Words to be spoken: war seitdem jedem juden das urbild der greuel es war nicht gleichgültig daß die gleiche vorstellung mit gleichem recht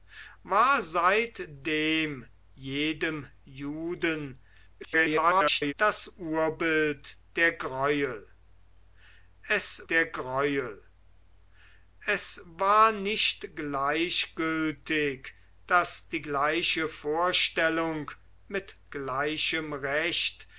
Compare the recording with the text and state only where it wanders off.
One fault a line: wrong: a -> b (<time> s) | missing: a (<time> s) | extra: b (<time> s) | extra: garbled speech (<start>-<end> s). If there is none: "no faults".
extra: garbled speech (4.8-5.7 s)
extra: der greuel es (9.9 s)